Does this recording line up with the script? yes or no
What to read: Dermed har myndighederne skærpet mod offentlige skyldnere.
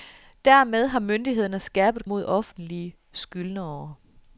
yes